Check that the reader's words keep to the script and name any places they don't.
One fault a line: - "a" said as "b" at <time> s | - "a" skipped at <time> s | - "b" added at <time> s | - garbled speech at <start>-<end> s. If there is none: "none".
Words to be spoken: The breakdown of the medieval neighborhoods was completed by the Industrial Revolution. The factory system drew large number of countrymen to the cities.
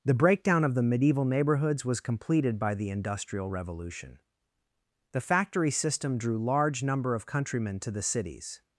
none